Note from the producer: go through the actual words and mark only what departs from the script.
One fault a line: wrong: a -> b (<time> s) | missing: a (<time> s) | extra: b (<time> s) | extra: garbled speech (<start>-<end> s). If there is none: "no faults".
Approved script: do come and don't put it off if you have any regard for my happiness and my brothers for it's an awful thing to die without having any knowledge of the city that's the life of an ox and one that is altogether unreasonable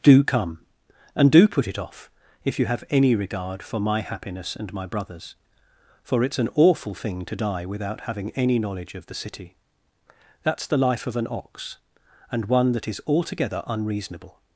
wrong: don't -> do (1.3 s)